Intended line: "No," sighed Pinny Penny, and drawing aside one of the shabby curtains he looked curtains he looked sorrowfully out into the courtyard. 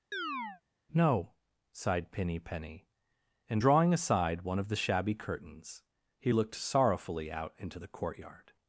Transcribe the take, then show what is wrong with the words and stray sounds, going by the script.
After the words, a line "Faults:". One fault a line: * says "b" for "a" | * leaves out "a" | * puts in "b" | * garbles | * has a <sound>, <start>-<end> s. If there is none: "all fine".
"No," sighed Pinny Penny, and drawing aside one of the shabby curtains he looked sorrowfully out into the courtyard.
Faults:
* has a chirp, 0.1-0.6 s
* leaves out "curtains he looked"